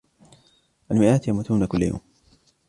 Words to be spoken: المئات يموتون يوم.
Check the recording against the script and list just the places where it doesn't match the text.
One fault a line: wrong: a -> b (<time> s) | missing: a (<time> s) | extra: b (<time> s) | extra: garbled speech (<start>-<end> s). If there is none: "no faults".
extra: كل (1.6 s)